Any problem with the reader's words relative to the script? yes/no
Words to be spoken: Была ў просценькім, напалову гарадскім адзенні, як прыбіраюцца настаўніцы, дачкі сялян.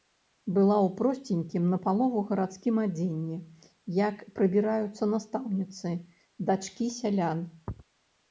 no